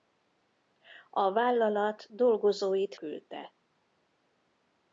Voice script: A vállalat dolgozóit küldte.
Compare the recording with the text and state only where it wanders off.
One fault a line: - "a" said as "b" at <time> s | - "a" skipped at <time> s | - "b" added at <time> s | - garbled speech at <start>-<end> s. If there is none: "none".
none